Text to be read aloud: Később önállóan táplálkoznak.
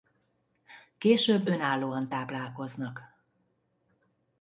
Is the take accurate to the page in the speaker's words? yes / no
yes